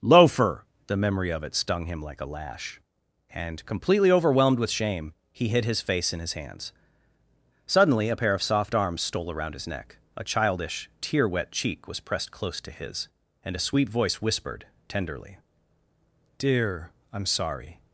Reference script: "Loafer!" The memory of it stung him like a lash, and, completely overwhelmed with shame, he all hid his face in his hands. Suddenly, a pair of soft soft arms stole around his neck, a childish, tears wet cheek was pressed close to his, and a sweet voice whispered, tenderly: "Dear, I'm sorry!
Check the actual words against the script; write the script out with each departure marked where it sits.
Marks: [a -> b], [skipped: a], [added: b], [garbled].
"Loafer!" The memory of it stung him like a lash, and, completely overwhelmed with shame, he [skipped: all] hid his face in his hands. Suddenly, a pair of soft [skipped: soft] arms stole around his neck, a childish, [tears -> tear] wet cheek was pressed close to his, and a sweet voice whispered, tenderly: "Dear, I'm sorry!